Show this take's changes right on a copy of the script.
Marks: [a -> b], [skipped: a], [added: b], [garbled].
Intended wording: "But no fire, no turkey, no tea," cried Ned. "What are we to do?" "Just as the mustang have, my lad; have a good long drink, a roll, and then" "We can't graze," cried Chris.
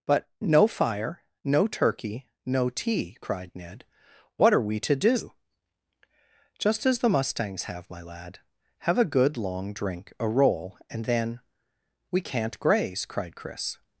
"But no fire, no turkey, no tea," cried Ned. "What are we to do?" "Just as the [mustang -> mustangs] have, my lad; have a good long drink, a roll, and then" "We can't graze," cried Chris.